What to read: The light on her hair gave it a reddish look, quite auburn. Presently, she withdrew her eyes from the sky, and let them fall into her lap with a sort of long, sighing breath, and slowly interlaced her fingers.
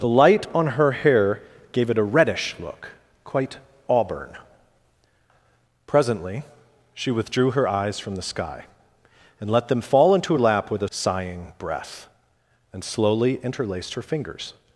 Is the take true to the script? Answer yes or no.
no